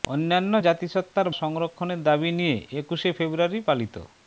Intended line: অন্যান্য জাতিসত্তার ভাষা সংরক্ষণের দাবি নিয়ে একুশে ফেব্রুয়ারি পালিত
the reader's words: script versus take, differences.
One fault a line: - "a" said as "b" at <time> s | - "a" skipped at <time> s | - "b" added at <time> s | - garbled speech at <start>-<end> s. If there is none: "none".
- "ভাষা" skipped at 1.3 s